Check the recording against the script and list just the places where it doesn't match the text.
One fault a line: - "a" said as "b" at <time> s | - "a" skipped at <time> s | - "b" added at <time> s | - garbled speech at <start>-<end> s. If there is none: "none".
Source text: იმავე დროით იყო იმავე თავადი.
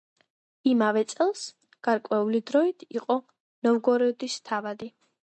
- "წელს გარკვეული" added at 1.1 s
- "იმავე" said as "ნოვგოროდის" at 3.7 s